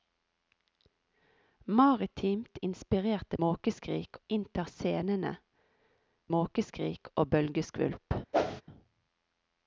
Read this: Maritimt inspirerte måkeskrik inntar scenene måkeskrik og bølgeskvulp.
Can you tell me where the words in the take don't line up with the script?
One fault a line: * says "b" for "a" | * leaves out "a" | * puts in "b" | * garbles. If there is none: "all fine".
all fine